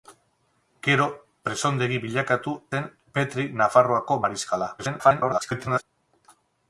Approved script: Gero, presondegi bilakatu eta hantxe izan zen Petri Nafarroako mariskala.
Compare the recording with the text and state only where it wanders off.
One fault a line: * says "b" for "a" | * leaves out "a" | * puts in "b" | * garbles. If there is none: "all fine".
* leaves out "eta hantxe izan"
* garbles